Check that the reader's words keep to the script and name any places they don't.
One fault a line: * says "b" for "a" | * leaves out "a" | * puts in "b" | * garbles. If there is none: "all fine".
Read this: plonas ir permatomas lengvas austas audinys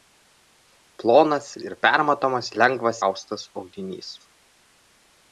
all fine